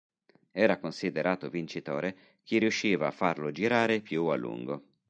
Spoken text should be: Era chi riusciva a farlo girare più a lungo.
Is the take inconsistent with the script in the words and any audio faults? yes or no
yes